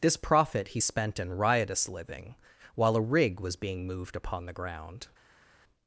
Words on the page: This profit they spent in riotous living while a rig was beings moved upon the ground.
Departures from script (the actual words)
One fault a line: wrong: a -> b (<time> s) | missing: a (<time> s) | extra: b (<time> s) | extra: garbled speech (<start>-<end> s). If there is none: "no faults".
wrong: they -> he (0.7 s)
wrong: beings -> being (3.6 s)